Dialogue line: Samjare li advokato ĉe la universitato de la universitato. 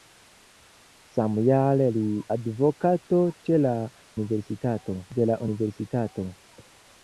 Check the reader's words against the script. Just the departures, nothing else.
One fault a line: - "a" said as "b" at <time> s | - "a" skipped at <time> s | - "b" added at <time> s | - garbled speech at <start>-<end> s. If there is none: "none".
none